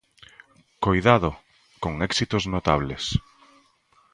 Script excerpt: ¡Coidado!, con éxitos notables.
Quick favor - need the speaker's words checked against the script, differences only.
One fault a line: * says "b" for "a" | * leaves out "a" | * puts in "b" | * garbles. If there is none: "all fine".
all fine